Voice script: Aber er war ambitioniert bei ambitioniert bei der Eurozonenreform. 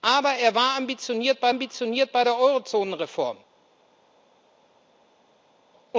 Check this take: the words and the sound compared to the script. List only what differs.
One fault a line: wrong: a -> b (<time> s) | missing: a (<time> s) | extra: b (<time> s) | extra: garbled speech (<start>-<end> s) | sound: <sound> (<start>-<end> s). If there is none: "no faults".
no faults